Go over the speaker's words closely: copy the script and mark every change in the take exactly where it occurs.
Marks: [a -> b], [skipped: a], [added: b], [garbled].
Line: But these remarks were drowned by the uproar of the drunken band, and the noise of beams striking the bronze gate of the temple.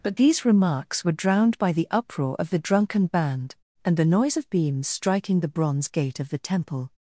But these remarks were drowned by the uproar of the drunken band, and the noise of beams striking the bronze gate of the temple.